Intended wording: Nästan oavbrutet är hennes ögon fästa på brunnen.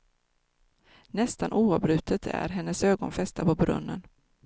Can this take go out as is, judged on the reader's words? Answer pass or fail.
pass